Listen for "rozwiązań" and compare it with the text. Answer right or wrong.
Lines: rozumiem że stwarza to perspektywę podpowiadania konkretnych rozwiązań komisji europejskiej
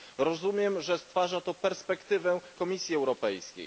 wrong